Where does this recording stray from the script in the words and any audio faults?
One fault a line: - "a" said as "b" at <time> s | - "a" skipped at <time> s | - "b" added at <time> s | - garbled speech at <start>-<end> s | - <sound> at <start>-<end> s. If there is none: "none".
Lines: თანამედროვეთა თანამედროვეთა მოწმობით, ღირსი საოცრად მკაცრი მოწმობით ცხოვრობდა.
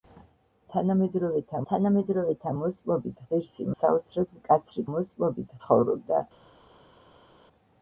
none